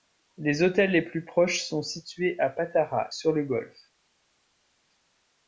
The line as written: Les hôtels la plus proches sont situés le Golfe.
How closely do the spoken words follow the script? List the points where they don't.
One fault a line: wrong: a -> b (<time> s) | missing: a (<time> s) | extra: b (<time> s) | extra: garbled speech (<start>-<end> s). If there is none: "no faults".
wrong: la -> les (0.9 s)
extra: à Patara sur (2.4 s)